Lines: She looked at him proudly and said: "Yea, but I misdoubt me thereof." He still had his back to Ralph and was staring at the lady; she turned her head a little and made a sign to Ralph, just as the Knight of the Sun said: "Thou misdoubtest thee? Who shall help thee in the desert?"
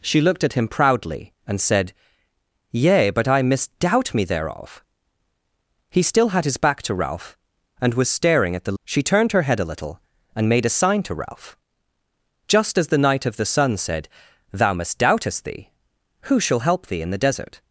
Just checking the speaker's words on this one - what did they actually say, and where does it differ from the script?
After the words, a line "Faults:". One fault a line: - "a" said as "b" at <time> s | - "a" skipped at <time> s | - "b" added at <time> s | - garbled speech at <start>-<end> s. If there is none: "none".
She looked at him proudly and said: "Yea, but I misdoubt me thereof." He still had his back to Ralph and was staring at the; she turned her head a little and made a sign to Ralph, just as the Knight of the Sun said: "Thou misdoubtest thee? Who shall help thee in the desert?"
Faults:
- "lady" skipped at 8.8 s